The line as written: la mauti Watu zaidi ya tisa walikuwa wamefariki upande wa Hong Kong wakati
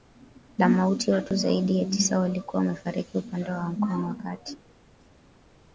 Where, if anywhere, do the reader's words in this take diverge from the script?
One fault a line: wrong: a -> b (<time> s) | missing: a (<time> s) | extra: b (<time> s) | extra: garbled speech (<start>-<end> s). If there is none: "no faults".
no faults